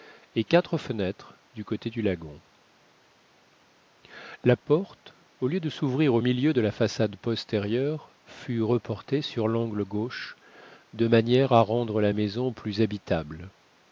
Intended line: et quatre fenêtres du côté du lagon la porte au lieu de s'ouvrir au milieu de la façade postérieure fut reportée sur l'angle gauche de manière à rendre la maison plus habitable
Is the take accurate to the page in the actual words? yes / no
yes